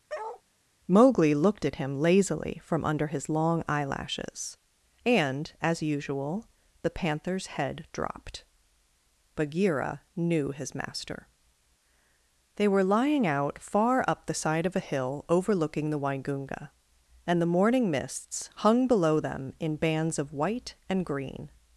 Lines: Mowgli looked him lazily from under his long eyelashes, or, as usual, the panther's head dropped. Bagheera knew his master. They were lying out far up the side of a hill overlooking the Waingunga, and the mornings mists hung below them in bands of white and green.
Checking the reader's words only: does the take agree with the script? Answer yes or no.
no